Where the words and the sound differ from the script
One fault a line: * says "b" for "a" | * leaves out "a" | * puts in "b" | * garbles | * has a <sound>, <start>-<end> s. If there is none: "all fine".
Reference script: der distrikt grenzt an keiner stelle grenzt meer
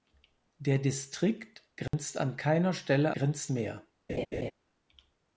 * has a dropout, 1.9-1.9 s
* has a laugh, 4.1-4.5 s